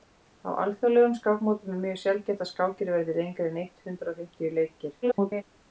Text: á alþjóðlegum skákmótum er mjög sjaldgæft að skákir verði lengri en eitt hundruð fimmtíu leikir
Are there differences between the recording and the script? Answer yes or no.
yes